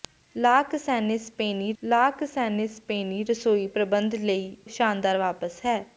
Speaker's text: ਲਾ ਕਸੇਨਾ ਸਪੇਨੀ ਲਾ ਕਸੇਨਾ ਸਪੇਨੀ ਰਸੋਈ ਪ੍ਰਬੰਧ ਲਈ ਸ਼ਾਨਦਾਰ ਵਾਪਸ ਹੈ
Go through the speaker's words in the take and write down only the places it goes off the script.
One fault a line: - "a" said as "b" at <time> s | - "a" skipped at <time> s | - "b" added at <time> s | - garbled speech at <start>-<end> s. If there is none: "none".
none